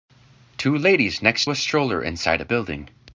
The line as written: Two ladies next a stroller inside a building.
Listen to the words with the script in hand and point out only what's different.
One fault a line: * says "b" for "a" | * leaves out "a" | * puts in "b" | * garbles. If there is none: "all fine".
all fine